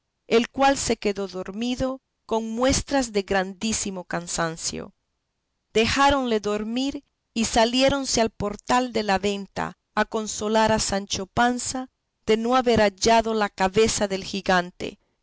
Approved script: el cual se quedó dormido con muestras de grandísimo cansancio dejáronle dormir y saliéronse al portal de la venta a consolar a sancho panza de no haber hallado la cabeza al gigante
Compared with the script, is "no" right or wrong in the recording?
right